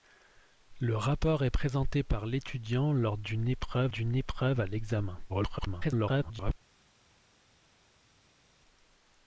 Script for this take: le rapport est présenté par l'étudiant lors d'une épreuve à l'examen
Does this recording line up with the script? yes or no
no